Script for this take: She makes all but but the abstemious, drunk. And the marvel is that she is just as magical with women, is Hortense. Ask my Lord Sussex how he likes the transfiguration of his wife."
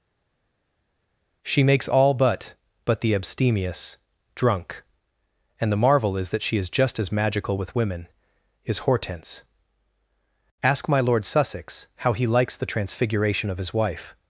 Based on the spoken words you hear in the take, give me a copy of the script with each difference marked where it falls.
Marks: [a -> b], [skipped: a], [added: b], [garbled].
She makes all but but the abstemious, drunk. And the marvel is that she is just as magical with women, is Hortense. Ask my Lord Sussex how he likes the transfiguration of his wife."